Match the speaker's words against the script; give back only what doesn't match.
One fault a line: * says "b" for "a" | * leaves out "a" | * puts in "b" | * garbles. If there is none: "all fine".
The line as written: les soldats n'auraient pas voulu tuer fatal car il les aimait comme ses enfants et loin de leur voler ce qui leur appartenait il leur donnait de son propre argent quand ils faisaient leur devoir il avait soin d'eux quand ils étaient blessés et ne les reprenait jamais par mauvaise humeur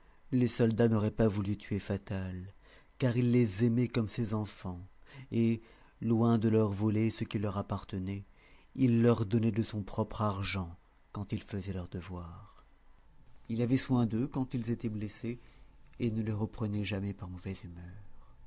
all fine